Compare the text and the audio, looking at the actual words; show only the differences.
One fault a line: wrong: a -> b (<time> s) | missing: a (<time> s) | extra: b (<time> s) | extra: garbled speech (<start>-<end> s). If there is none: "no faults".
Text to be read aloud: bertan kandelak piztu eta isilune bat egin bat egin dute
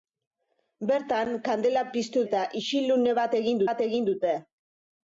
no faults